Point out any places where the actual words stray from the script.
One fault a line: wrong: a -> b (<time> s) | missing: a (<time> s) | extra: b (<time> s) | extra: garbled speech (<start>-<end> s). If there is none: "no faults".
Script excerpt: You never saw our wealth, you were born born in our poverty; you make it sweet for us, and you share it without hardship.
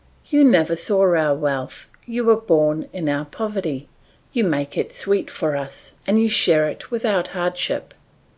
missing: born (2.9 s)